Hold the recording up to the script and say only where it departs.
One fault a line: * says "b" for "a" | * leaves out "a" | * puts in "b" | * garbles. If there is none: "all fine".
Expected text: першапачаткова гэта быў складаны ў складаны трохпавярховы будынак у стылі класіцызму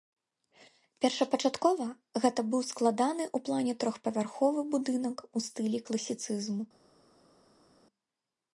* says "плане" for "складаны"